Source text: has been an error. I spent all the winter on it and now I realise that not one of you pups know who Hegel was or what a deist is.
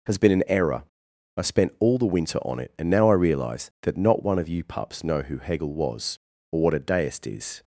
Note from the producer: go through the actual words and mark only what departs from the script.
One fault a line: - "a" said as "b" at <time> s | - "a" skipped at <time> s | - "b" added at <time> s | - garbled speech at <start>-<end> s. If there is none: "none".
none